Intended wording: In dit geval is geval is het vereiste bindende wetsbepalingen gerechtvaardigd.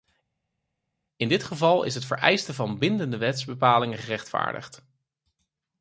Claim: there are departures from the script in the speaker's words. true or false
true